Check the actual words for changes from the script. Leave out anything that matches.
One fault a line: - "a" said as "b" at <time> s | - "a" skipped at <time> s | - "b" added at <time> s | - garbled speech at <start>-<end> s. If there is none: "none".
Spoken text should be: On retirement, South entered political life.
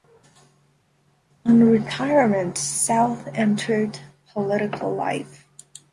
none